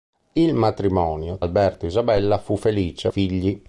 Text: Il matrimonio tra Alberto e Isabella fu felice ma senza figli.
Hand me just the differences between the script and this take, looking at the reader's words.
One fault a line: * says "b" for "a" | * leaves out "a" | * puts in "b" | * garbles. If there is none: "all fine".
* leaves out "tra"
* leaves out "ma senza"